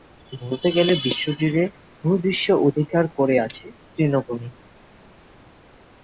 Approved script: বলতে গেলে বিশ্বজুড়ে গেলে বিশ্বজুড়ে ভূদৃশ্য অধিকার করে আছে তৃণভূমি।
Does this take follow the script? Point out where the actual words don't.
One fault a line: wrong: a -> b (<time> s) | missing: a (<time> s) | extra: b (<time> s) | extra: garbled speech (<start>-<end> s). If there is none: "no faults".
missing: গেলে বিশ্বজুড়ে (1.6 s)